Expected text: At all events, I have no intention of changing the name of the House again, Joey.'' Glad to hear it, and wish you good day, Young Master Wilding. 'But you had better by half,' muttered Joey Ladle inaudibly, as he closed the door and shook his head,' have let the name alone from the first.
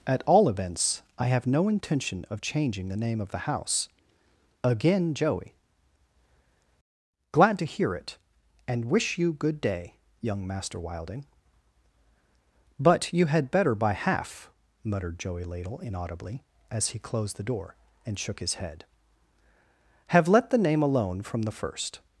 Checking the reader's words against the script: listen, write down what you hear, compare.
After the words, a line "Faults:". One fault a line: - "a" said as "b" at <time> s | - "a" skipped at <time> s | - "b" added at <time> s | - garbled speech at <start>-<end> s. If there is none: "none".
At all events, I have no intention of changing the name of the House again, Joey.'' Glad to hear it, and wish you good day, Young Master Wilding. 'But you had better by half,' muttered Joey Ladle inaudibly, as he closed the door and shook his head,' have let the name alone from the first.
Faults:
none